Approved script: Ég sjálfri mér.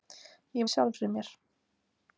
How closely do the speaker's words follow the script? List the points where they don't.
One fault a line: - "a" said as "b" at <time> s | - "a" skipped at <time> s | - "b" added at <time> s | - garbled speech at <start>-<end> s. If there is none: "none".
none